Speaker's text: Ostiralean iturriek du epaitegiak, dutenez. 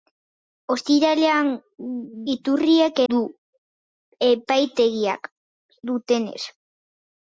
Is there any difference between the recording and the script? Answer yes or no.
no